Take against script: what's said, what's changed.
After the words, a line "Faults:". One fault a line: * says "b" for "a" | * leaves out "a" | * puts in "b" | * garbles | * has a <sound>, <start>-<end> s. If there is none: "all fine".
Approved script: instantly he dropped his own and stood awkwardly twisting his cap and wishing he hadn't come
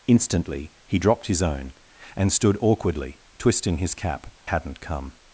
instantly he dropped his own and stood awkwardly twisting his cap hadn't come
Faults:
* leaves out "and wishing he"